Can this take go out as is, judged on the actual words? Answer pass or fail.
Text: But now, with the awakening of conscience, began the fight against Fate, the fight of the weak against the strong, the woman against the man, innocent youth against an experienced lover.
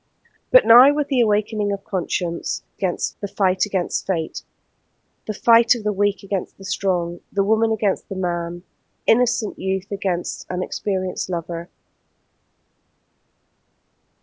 fail